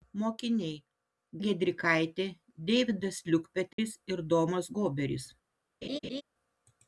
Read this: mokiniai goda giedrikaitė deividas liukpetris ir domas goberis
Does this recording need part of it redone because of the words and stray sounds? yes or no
yes